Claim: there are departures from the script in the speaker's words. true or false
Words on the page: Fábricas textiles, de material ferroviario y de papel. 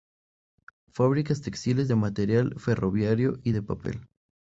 false